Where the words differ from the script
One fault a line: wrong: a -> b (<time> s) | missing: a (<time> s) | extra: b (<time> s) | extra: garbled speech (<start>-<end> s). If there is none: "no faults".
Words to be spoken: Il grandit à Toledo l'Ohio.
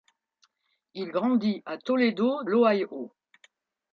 no faults